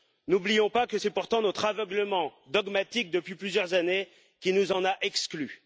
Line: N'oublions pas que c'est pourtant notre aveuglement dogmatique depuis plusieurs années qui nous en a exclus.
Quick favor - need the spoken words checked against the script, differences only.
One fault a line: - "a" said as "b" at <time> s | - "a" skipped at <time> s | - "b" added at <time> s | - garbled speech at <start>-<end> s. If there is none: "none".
none